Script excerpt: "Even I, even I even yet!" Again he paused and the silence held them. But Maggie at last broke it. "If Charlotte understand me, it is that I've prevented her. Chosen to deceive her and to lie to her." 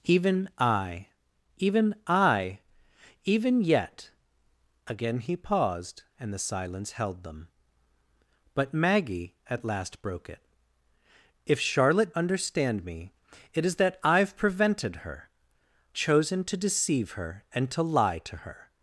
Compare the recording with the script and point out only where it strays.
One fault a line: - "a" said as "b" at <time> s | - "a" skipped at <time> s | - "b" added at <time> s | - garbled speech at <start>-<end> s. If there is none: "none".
none